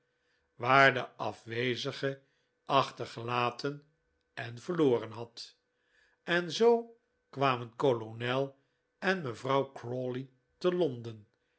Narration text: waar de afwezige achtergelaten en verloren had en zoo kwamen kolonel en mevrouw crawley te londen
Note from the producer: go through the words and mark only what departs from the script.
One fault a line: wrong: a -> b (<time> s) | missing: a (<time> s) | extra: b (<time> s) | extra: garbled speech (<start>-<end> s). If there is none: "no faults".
no faults